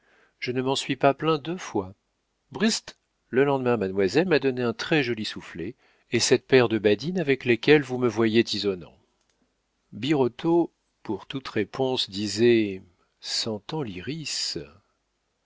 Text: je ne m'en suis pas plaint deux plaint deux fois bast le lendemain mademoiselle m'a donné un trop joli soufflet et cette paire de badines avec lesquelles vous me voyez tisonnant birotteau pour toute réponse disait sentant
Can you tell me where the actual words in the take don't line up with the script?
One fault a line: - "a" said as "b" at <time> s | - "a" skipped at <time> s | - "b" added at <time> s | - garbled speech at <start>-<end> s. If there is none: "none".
- "plaint deux" skipped at 1.6 s
- "trop" said as "très" at 4.7 s